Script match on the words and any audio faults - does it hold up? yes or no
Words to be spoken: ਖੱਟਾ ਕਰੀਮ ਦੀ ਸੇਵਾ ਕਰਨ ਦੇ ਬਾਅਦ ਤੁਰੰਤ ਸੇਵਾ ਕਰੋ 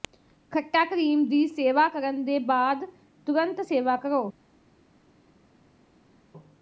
yes